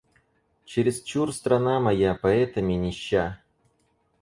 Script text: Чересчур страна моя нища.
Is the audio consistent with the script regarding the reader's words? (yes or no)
no